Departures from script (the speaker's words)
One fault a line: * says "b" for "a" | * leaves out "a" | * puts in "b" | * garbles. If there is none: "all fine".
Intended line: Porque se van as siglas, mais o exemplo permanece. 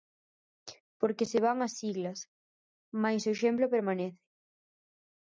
all fine